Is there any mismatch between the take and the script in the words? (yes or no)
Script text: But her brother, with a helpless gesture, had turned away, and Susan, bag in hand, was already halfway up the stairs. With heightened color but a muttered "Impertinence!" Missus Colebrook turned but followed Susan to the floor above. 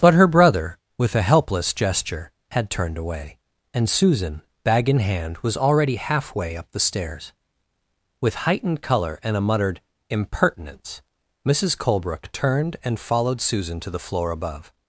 yes